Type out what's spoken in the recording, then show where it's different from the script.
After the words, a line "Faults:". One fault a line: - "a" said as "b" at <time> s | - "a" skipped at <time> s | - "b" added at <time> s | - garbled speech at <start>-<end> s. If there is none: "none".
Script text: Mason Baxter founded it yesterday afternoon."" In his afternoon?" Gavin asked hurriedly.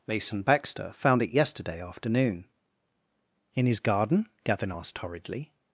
Mason Baxter found it yesterday afternoon."" In his garden?" Gavin asked hurriedly.
Faults:
- "founded" said as "found" at 0.9 s
- "afternoon" said as "garden" at 3.8 s